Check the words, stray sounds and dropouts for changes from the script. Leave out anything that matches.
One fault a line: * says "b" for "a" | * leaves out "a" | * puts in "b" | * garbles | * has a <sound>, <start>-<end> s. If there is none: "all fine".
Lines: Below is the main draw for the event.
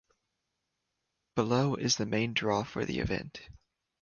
all fine